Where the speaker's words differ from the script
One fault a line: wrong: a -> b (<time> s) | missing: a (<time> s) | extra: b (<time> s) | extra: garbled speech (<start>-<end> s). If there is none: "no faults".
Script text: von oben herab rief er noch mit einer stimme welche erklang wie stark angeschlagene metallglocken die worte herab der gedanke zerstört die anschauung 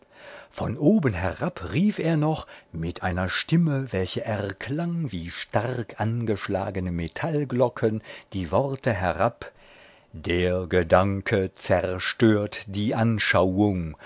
no faults